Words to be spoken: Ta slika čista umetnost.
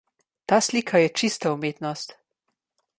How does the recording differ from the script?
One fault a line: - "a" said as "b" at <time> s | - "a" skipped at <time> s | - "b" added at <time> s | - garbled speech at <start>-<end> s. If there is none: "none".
- "je" added at 1.0 s